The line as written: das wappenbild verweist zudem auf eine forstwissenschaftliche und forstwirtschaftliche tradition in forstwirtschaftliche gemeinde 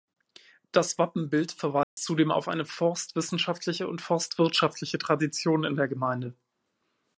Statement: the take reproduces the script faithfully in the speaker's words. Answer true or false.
false